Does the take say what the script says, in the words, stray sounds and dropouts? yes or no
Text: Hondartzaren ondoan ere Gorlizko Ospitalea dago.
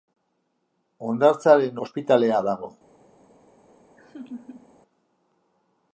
no